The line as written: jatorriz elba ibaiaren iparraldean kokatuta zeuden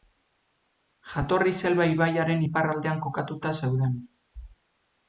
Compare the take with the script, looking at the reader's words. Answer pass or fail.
pass